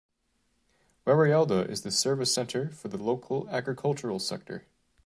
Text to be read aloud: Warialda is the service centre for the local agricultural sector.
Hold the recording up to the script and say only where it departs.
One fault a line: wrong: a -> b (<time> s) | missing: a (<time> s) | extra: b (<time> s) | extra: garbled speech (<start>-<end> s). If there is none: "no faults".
no faults